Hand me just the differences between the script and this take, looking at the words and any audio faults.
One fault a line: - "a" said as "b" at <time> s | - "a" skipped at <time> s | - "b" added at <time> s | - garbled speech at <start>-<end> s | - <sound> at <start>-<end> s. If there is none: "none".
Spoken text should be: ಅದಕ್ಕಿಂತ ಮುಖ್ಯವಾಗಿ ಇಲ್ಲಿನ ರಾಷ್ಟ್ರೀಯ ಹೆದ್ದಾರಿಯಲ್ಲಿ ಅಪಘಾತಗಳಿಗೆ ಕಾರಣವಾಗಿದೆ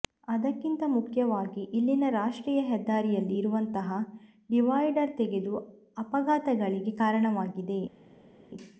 - "ಇರುವಂತಹ ಡಿವೈಡರ್ ತೆಗೆದು" added at 3.4 s